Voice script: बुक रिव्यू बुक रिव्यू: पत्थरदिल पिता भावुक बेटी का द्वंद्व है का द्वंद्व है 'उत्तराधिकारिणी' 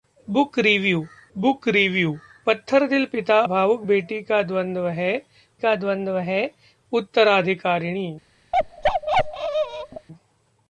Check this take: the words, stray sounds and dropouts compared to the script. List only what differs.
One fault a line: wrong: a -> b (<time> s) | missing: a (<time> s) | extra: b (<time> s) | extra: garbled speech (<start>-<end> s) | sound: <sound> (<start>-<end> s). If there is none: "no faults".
sound: bark (8.5-10.1 s)